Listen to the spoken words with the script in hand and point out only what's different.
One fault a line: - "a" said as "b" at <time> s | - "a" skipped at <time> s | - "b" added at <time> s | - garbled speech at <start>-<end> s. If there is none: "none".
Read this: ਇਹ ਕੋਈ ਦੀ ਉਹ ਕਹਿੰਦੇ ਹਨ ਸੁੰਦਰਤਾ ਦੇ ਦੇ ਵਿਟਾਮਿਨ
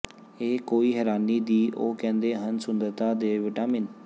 - "ਹੈਰਾਨੀ" added at 0.9 s
- "ਦੇ" skipped at 3.4 s